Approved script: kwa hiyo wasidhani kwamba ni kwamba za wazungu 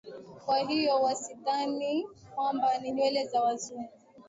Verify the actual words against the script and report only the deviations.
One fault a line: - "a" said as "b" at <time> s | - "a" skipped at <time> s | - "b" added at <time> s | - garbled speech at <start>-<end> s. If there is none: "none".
- "kwamba" said as "nywele" at 2.9 s